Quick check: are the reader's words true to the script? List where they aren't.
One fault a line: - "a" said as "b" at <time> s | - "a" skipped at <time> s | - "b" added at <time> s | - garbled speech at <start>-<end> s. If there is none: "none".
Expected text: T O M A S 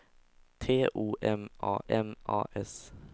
- "M A" added at 1.9 s